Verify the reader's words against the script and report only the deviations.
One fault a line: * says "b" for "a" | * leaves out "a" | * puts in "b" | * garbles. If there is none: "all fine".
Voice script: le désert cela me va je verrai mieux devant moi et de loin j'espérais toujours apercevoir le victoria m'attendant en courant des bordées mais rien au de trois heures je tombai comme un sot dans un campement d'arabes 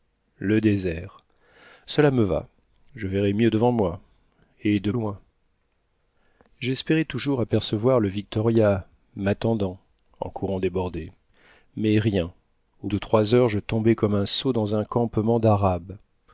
all fine